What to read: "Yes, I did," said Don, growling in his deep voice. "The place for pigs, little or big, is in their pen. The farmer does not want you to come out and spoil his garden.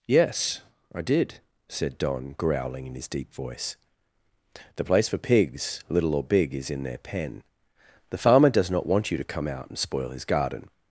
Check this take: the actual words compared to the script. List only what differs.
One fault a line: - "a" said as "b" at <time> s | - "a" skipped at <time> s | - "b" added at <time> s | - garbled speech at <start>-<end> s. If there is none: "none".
none